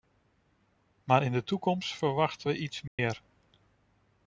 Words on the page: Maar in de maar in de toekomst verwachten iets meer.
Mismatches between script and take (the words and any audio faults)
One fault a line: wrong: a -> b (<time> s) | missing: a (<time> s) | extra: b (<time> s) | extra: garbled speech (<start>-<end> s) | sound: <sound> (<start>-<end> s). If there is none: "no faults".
missing: maar in de (1.4 s)
extra: we (2.5 s)
sound: dropout (2.9-3.0 s)